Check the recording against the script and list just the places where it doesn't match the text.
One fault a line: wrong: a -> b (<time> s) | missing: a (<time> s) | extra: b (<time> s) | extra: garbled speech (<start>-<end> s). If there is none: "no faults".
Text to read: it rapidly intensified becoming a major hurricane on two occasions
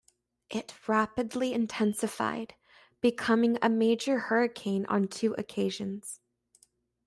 no faults